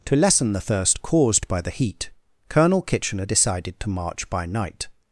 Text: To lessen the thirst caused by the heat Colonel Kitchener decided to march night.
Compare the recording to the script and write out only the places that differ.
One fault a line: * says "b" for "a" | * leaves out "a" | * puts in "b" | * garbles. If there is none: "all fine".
* puts in "by"